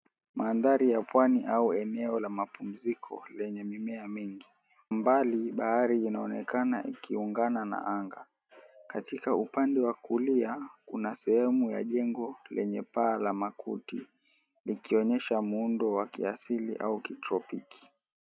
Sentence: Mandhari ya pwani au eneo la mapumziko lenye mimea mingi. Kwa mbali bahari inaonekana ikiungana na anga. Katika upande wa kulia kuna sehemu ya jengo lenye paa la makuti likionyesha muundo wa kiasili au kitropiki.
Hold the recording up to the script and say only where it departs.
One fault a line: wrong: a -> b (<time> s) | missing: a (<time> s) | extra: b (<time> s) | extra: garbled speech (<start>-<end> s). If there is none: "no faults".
missing: Kwa (4.5 s)